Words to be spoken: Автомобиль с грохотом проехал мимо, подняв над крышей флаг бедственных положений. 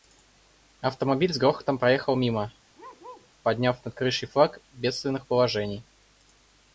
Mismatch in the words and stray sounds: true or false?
true